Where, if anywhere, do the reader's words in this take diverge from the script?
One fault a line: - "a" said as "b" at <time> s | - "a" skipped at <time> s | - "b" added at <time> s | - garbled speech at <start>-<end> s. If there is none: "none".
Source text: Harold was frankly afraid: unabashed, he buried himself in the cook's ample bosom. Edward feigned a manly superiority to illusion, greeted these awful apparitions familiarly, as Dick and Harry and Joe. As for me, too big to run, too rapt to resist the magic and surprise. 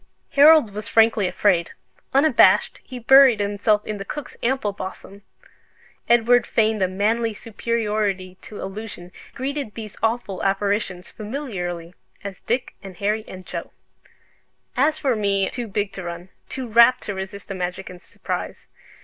none